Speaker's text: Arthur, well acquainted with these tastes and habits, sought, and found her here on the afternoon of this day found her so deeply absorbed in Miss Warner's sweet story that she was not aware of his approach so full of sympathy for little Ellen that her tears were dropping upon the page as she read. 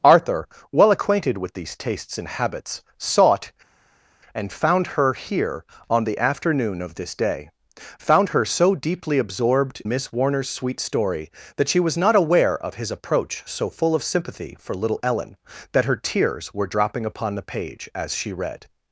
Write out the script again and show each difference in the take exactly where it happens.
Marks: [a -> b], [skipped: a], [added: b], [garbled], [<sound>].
Arthur, well acquainted with these tastes and habits, sought, and found her here on the afternoon of this day found her so deeply absorbed [skipped: in] Miss Warner's sweet story that she was not aware of his approach so full of sympathy for little Ellen that her tears were dropping upon the page as she read.